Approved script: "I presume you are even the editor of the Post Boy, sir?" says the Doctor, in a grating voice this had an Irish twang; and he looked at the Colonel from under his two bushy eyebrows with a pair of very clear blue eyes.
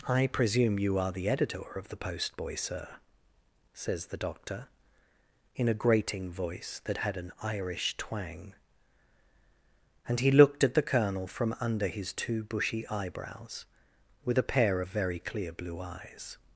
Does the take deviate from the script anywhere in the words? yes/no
yes